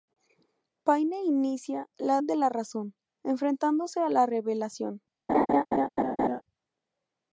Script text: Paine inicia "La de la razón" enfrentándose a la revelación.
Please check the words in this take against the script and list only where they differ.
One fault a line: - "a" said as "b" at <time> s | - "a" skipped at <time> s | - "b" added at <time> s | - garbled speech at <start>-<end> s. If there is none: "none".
none